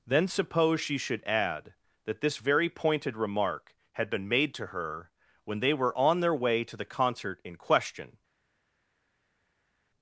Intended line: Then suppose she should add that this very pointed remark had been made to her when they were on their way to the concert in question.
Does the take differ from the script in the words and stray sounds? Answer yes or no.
no